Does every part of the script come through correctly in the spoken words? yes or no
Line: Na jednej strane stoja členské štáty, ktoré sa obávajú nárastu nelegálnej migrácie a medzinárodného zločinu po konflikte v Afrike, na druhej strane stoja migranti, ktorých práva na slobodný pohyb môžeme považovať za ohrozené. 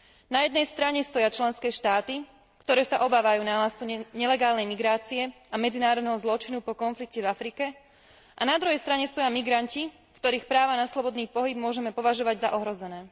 no